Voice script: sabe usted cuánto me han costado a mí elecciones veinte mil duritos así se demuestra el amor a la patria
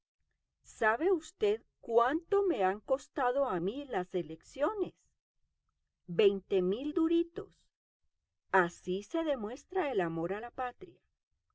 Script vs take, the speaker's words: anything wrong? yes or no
yes